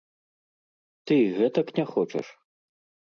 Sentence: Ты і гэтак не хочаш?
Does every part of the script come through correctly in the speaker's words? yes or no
yes